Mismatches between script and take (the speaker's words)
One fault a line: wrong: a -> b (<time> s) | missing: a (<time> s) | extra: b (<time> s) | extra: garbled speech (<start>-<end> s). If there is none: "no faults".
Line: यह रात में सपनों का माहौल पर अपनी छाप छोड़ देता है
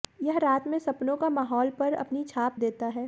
missing: छोड़ (2.6 s)